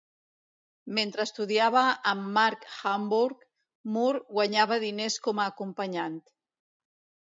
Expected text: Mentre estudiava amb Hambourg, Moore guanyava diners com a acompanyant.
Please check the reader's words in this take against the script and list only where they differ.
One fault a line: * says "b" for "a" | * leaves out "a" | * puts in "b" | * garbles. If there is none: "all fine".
* puts in "Mark"